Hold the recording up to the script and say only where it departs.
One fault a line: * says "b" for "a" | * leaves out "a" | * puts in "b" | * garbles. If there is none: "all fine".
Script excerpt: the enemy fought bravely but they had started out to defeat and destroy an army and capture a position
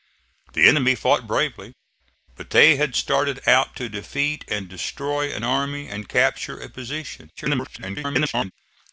* garbles